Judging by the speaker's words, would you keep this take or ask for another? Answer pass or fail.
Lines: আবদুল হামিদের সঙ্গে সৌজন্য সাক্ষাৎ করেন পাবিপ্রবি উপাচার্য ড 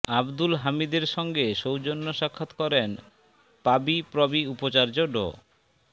pass